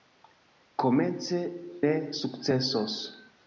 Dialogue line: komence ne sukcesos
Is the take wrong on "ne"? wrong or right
right